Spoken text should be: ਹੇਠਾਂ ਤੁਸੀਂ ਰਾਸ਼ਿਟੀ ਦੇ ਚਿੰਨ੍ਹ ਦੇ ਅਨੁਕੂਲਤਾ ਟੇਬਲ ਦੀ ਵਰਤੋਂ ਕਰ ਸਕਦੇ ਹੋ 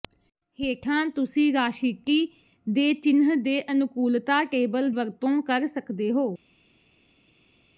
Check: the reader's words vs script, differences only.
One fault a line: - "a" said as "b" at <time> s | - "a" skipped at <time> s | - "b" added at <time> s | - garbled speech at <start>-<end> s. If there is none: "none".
- "ਦੀ" skipped at 4.9 s